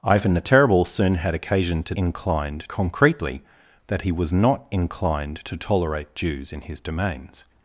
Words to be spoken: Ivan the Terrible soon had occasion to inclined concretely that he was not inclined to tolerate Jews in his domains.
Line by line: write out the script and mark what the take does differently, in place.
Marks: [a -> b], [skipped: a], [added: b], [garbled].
Ivan the Terrible soon had occasion to inclined concretely that he was not inclined to tolerate Jews in his domains.